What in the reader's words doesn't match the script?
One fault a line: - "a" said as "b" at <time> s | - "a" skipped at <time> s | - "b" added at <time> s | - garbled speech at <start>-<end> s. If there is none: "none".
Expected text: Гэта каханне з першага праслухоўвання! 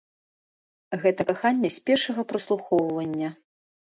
none